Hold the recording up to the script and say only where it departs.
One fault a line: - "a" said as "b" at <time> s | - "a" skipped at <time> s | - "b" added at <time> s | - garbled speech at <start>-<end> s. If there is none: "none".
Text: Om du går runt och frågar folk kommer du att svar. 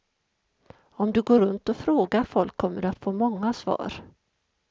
- "få många" added at 3.0 s